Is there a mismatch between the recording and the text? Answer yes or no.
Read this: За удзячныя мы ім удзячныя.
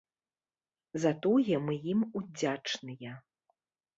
yes